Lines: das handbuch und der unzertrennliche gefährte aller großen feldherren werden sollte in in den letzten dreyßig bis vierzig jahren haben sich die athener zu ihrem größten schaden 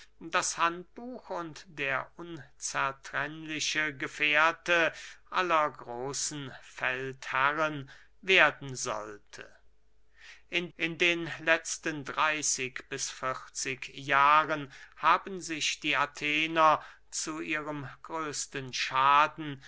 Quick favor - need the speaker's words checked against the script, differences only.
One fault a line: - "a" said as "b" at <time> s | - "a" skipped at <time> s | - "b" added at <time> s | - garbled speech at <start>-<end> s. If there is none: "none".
none